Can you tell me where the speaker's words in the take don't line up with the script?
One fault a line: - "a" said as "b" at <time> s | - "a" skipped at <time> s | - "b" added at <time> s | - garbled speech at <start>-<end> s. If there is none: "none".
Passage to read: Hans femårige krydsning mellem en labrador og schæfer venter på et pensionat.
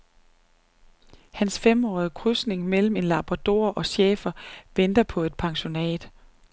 none